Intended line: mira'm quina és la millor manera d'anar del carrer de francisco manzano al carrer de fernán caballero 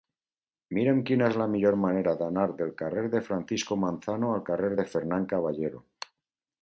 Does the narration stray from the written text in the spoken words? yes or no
no